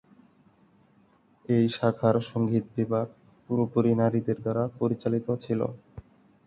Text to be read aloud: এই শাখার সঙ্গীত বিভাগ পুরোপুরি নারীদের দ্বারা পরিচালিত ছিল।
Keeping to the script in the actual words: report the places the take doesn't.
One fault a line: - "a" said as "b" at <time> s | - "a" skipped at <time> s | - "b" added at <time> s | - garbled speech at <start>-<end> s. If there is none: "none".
none